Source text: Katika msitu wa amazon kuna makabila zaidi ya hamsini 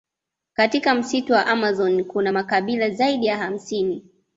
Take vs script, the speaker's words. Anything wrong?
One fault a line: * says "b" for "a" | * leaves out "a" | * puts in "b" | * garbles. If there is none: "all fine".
all fine